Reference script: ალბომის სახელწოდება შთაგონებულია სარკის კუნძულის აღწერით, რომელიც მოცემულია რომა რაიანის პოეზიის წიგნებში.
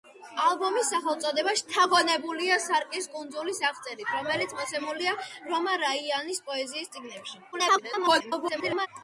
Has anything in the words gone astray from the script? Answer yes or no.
yes